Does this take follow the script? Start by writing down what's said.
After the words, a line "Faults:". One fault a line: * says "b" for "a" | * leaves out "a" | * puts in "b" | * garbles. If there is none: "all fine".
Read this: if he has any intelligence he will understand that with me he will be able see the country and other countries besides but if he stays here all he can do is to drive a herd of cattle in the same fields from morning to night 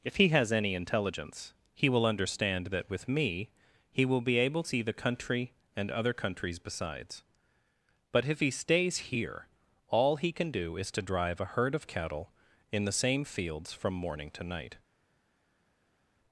if he has any intelligence he will understand that with me he will be able see the country and other countries besides but if he stays here all he can do is to drive a herd of cattle in the same fields from morning to night
Faults:
all fine